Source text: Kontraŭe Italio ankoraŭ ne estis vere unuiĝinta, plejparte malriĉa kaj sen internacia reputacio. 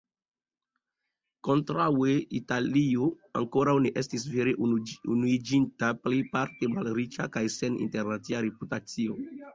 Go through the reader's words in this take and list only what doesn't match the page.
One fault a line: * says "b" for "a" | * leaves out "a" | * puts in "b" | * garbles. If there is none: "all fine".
all fine